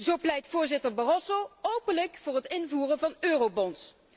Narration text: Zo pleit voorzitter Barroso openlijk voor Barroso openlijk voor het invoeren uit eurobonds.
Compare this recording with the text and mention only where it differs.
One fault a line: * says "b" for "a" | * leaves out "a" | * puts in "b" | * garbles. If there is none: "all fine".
* leaves out "Barroso openlijk voor"
* says "van" for "uit"